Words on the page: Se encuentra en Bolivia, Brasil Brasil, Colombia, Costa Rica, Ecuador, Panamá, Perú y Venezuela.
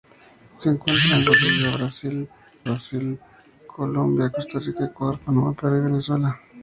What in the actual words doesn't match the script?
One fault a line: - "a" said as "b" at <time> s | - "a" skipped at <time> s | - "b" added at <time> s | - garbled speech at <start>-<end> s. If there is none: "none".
none